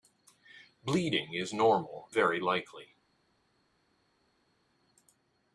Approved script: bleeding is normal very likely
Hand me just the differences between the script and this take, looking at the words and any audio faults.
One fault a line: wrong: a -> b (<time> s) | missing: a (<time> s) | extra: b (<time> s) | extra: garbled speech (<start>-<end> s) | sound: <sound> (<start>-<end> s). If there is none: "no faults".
no faults